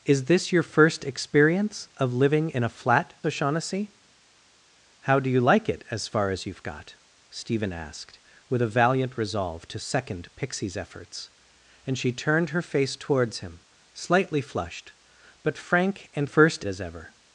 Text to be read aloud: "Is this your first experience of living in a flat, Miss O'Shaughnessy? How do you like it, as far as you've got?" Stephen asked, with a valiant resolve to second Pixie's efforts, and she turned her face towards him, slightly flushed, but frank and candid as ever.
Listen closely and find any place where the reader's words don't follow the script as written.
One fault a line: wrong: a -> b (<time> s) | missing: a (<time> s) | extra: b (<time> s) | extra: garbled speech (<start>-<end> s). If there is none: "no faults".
missing: Miss (3.1 s)
wrong: candid -> first (16.2 s)